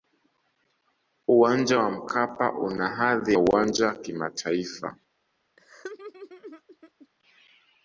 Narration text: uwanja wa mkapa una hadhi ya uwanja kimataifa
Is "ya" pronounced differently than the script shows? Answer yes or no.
yes